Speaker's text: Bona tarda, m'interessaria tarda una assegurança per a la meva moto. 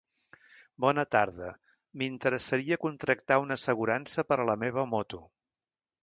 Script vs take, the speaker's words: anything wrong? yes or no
yes